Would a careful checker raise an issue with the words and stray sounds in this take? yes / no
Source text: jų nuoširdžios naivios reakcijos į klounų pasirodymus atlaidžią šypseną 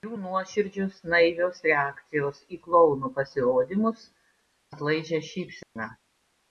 yes